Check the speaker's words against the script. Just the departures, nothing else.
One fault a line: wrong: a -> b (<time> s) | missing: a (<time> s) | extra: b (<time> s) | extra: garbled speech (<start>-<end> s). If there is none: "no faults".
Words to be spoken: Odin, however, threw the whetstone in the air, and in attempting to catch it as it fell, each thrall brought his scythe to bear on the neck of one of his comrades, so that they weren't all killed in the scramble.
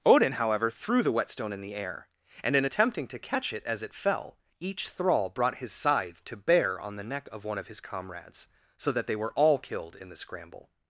wrong: weren't -> were (9.2 s)